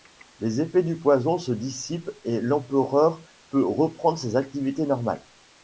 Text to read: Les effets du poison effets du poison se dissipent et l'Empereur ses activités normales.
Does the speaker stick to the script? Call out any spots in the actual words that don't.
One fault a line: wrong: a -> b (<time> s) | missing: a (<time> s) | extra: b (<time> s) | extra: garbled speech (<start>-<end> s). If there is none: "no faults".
missing: effets du poison (1.4 s)
extra: peut reprendre (3.5 s)